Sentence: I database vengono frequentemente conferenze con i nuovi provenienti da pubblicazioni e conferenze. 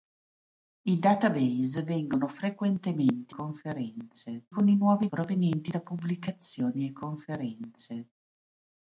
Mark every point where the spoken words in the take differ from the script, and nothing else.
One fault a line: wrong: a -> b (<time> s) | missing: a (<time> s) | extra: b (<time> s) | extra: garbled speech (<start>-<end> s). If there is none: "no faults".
no faults